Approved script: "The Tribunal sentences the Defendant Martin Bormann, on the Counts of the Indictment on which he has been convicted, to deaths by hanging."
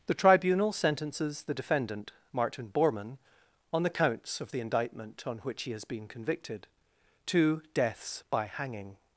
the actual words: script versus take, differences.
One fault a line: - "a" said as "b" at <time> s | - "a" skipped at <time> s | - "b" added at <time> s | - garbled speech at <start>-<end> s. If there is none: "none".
none